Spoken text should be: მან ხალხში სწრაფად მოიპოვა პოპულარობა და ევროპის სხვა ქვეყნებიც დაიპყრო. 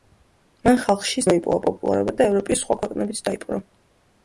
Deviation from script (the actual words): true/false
true